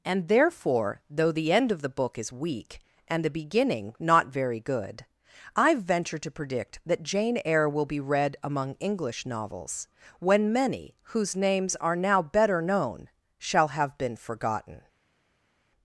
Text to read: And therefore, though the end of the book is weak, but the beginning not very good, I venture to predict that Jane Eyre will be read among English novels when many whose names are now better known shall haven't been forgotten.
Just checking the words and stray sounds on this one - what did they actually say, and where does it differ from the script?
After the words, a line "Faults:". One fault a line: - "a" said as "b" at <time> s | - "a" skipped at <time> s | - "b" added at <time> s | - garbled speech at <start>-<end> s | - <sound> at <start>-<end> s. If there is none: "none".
And therefore, though the end of the book is weak, and the beginning not very good, I venture to predict that Jane Eyre will be read among English novels when many whose names are now better known shall have been forgotten.
Faults:
- "but" said as "and" at 3.1 s
- "haven't" said as "have" at 13.7 s